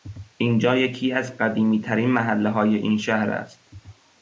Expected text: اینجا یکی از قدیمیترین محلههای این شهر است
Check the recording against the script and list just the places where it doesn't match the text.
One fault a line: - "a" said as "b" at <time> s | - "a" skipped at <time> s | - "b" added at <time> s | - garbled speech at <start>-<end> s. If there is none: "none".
none